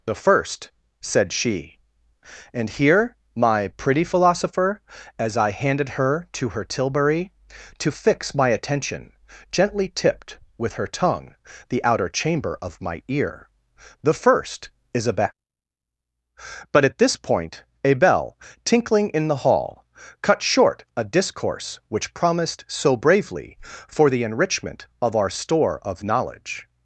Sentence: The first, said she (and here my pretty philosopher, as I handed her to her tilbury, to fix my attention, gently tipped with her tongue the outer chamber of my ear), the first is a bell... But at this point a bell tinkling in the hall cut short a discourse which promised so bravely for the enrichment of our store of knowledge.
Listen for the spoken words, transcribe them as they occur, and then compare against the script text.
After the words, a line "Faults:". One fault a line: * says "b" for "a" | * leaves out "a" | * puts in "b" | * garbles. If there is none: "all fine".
The first, said she (and here my pretty philosopher, as I handed her to her tilbury, to fix my attention, gently tipped with her tongue the outer chamber of my ear), the first is a bell... But at this point a bell tinkling in the hall cut short a discourse which promised so bravely for the enrichment of our store of knowledge.
Faults:
all fine